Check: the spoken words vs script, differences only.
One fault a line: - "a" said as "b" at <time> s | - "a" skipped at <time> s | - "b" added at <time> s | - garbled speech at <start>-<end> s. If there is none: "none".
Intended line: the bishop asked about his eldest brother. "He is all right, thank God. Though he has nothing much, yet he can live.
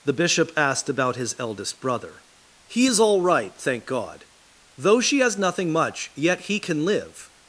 - "he" said as "she" at 5.0 s